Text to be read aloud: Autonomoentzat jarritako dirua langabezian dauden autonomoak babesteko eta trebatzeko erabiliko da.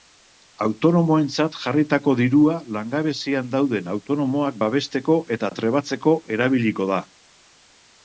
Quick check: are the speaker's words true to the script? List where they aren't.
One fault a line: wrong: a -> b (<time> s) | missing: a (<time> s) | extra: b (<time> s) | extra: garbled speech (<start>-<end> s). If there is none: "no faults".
no faults